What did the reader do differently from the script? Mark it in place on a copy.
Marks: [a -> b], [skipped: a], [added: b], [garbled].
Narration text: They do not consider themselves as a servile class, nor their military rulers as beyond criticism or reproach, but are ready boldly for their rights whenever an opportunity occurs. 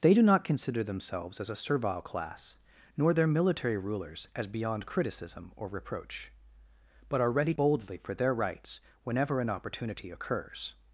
They do not consider themselves as a servile class, nor their military rulers as beyond criticism or reproach, but are ready boldly for their rights whenever an opportunity occurs.